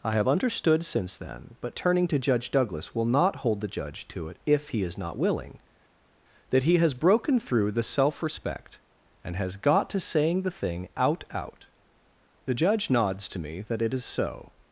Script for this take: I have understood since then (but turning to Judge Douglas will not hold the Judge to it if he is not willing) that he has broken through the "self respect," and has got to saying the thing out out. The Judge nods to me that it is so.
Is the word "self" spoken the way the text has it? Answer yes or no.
yes